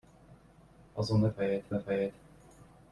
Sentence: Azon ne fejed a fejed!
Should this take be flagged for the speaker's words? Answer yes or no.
no